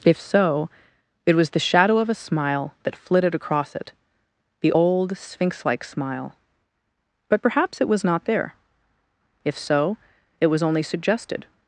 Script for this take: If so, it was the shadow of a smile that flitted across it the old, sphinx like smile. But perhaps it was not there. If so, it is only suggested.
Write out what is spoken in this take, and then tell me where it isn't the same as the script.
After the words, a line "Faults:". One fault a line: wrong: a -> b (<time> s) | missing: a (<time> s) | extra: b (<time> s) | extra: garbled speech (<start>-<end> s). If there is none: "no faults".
If so, it was the shadow of a smile that flitted across it the old, sphinx like smile. But perhaps it was not there. If so, it was only suggested.
Faults:
wrong: is -> was (10.5 s)